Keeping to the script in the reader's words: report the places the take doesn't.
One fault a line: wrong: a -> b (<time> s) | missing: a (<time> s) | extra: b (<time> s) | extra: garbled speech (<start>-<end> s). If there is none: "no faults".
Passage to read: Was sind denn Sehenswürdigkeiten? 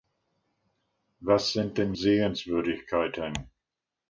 no faults